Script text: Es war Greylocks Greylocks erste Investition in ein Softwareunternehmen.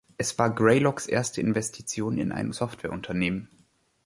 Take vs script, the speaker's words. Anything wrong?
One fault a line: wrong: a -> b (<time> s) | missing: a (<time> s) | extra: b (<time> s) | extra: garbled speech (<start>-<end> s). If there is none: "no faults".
missing: Greylocks (1.1 s)